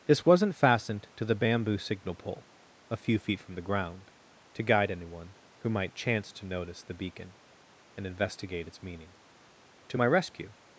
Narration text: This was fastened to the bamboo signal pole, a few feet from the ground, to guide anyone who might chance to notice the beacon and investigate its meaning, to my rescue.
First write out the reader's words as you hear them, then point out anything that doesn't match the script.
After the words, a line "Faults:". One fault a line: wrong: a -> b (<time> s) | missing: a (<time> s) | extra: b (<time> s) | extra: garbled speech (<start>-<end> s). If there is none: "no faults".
This wasn't fastened to the bamboo signal pole, a few feet from the ground, to guide anyone who might chance to notice the beacon and investigate its meaning, to my rescue.
Faults:
wrong: was -> wasn't (0.2 s)